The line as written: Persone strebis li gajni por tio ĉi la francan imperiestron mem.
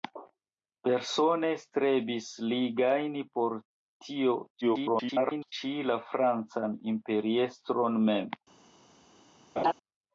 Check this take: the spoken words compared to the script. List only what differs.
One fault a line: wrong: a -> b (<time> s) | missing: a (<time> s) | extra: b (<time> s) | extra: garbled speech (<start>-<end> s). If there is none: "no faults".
extra: garbled speech (4.6-5.5 s)